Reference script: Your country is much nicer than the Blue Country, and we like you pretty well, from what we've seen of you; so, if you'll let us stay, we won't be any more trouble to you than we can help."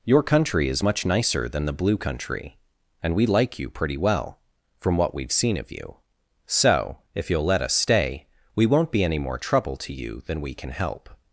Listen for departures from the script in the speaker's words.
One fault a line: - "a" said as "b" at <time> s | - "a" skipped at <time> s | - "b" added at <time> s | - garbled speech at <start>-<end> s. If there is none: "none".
none